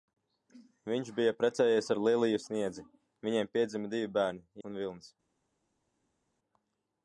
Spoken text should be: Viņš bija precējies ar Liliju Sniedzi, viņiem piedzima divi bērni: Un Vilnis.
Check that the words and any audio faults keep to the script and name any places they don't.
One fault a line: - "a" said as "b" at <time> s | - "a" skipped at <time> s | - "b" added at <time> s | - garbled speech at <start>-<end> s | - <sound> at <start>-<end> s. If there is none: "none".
none